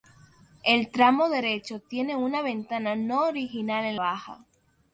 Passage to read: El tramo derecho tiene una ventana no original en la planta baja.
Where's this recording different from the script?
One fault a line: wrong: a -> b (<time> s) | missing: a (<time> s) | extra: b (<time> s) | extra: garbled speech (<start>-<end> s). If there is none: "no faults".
missing: la planta (4.0 s)